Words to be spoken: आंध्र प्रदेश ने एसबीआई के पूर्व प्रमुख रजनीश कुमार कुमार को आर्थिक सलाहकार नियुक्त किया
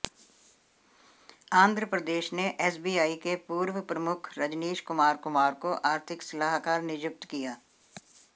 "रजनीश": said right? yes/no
yes